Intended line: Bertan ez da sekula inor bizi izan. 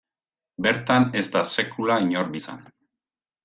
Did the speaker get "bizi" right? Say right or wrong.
wrong